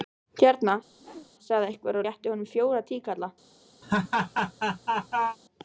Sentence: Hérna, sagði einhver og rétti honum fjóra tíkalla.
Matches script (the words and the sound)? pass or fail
fail